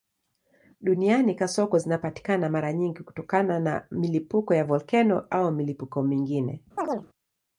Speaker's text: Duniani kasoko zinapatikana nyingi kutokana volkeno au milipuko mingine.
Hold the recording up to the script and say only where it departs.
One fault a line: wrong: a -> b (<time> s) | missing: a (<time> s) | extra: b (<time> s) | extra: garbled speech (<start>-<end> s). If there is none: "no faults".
extra: mara (2.5 s)
extra: na milipuko ya (3.6 s)